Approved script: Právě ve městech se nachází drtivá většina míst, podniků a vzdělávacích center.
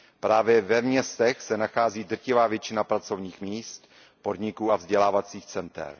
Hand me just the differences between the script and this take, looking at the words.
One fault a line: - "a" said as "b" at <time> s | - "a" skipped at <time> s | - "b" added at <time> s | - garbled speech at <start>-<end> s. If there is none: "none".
- "pracovních" added at 2.8 s